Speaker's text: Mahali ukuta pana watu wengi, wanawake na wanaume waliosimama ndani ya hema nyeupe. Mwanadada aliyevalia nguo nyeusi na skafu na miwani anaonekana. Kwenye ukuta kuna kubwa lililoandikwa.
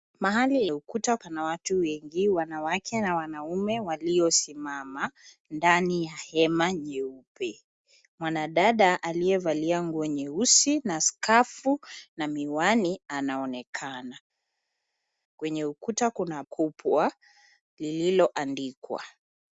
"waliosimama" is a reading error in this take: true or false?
false